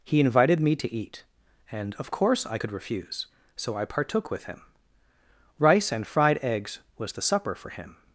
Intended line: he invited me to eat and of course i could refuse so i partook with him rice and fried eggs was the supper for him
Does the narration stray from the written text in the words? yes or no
no